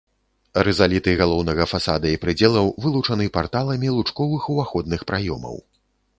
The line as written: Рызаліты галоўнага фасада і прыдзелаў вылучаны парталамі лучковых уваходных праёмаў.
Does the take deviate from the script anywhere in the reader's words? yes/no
no